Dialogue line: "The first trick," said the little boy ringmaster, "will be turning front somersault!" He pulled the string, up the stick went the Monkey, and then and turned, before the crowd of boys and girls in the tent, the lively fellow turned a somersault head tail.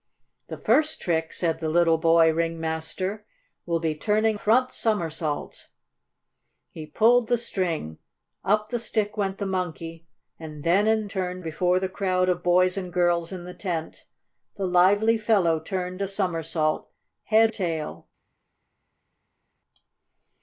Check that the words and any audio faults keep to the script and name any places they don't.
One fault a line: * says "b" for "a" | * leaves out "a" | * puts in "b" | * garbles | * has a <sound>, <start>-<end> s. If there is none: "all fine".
all fine